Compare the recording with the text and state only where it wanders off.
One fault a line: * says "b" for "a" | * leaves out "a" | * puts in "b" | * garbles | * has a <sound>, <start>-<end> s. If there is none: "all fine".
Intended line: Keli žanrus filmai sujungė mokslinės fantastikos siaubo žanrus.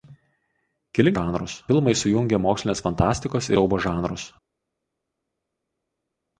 all fine